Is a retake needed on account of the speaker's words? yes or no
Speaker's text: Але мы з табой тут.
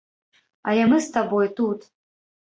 no